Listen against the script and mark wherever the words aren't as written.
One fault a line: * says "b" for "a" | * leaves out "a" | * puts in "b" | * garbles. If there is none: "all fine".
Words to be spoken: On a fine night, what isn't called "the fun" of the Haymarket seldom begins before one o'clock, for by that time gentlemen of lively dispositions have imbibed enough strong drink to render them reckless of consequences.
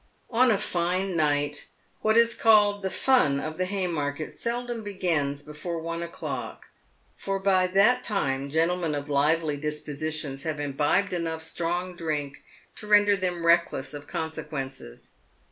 * says "is" for "isn't"